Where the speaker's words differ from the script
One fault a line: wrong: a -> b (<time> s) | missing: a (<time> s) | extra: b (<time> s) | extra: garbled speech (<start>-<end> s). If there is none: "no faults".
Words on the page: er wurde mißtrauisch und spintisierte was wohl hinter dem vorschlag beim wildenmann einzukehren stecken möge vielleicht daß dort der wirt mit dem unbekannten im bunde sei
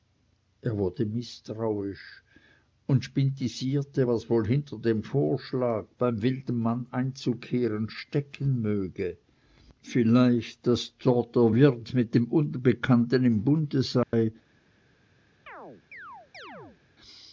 no faults